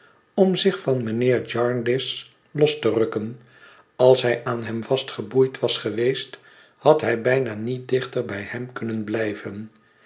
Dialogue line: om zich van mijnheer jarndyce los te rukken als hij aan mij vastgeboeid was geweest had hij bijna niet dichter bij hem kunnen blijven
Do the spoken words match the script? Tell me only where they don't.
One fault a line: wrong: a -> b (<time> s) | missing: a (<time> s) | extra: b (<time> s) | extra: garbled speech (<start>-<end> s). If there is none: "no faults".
wrong: mij -> hem (4.6 s)